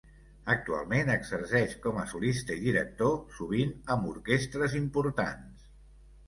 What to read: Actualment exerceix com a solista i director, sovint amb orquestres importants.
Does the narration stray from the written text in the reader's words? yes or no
no